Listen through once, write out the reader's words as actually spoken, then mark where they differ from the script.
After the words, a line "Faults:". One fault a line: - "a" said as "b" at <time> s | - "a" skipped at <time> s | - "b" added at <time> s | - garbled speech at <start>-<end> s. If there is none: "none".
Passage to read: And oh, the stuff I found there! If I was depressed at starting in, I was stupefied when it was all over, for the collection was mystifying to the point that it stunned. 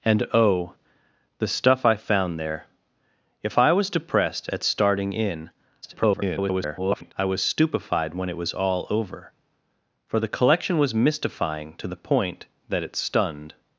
And oh, the stuff I found there! If I was depressed at starting in, [garbled] I was stupefied when it was all over, for the collection was mystifying to the point that it stunned.
Faults:
- garbled speech at 5.8-7.1 s